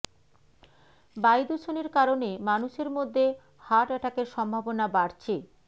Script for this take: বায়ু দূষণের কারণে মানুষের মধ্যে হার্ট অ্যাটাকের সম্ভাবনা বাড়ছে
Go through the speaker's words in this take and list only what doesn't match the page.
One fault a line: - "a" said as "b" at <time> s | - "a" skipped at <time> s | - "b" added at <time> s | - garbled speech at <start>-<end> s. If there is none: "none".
none